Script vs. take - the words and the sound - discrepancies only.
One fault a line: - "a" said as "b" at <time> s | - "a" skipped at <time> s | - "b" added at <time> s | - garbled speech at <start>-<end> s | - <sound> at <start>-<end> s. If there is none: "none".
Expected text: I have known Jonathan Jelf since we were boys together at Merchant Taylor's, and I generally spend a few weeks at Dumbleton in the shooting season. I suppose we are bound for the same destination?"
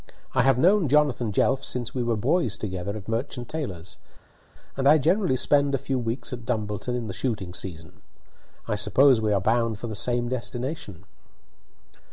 none